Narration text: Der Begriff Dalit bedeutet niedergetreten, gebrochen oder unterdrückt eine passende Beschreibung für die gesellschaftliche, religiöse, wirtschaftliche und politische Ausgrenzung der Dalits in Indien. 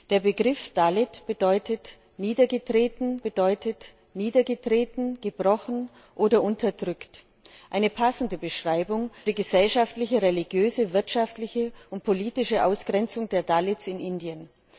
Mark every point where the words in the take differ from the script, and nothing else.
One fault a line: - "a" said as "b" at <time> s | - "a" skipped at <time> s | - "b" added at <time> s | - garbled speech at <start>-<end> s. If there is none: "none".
- "bedeutet niedergetreten" added at 3.2 s
- "für" skipped at 9.1 s